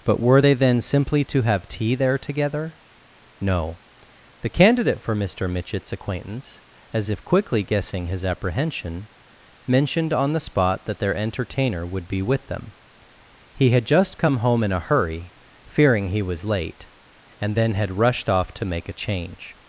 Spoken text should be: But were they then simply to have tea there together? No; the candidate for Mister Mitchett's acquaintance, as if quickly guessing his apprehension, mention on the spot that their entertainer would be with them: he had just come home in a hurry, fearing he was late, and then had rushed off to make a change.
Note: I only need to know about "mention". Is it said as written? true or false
false